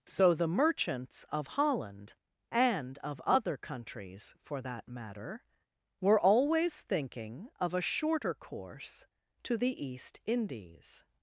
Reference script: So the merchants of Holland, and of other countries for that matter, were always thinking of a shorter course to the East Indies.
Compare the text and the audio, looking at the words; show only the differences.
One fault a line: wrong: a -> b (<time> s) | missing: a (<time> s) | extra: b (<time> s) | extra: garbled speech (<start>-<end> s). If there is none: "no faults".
no faults